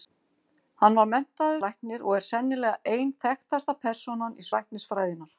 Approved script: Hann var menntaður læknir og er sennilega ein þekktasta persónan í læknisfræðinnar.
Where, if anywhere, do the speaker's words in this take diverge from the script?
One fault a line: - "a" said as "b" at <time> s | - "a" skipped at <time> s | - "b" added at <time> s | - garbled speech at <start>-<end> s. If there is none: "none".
none